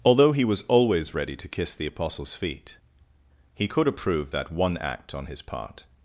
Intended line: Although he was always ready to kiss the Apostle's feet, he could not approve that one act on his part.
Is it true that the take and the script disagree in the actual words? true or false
true